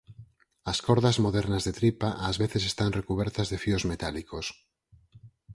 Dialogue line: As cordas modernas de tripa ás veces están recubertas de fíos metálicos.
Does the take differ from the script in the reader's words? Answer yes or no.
no